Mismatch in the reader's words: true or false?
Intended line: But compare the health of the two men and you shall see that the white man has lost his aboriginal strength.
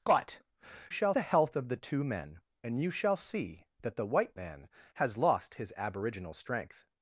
true